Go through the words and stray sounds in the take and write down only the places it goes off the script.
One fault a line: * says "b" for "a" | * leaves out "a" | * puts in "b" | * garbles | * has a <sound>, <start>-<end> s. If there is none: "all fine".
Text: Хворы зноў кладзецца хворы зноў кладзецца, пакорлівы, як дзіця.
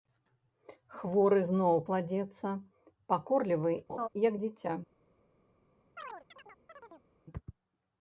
* leaves out "хворы зноў кладзецца"
* has a laugh, 3.9-4.1 s
* has a chirp, 6.0-7.1 s